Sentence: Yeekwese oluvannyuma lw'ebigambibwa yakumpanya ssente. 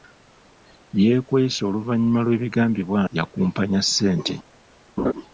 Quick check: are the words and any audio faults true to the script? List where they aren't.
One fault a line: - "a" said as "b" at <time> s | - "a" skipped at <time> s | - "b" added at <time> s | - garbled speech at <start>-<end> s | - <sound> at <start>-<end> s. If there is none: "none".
- laugh at 5.0-5.1 s